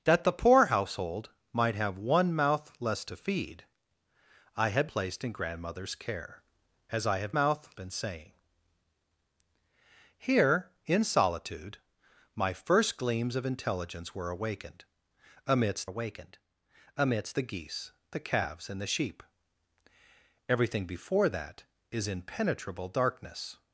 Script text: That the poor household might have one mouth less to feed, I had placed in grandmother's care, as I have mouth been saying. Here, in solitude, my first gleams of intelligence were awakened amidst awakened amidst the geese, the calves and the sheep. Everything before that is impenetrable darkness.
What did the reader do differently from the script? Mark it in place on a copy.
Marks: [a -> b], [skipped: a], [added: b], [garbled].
That the poor household might have one mouth less to feed, I had placed in grandmother's care, as I have mouth been saying. Here, in solitude, my first gleams of intelligence were awakened amidst awakened amidst the geese, the calves and the sheep. Everything before that is impenetrable darkness.